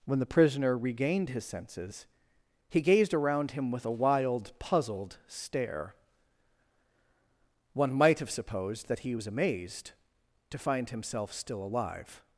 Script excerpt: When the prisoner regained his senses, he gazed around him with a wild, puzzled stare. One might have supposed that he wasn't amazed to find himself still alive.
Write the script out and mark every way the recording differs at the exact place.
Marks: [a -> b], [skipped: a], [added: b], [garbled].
When the prisoner regained his senses, he gazed around him with a wild, puzzled stare. One might have supposed that he [wasn't -> was] amazed to find himself still alive.